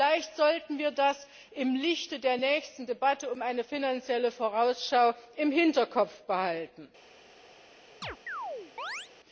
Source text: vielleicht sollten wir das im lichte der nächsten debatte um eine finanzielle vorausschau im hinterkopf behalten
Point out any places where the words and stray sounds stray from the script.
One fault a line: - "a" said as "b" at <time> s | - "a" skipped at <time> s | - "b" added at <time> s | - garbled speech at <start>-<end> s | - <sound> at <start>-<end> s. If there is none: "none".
- chirp at 8.0-9.1 s